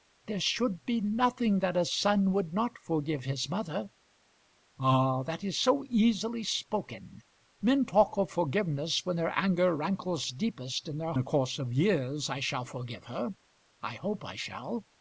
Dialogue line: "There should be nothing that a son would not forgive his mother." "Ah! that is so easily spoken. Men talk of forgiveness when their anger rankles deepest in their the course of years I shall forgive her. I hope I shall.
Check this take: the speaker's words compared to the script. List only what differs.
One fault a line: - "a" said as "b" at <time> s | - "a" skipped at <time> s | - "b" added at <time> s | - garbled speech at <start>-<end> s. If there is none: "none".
none